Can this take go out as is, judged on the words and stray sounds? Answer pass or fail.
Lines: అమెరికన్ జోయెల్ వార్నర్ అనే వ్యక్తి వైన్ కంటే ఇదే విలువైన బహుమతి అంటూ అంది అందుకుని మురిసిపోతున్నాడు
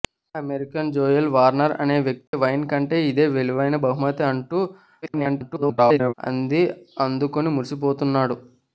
fail